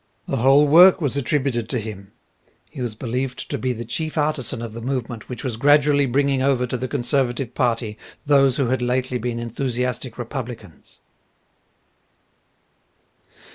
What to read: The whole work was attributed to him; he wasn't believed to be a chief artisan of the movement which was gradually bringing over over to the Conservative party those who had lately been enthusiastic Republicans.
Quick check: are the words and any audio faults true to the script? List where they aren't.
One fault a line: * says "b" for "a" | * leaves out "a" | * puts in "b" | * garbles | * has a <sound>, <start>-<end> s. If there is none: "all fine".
* says "was" for "wasn't"
* says "the" for "a"
* leaves out "over"